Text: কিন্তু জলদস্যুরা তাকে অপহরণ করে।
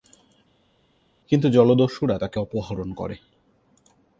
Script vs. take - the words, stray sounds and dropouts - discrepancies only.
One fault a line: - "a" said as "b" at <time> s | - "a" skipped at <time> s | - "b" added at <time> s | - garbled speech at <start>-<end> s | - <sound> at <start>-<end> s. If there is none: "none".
none